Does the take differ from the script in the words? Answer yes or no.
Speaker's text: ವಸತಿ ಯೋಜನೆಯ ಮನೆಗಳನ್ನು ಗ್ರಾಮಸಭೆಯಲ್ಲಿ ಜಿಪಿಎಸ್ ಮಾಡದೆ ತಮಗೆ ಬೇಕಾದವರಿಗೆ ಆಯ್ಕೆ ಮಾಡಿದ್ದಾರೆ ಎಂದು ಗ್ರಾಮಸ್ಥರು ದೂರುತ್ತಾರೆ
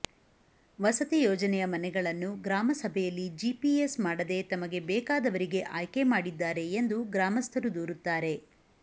no